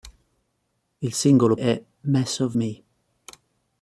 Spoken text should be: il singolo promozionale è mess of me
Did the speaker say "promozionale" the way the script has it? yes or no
no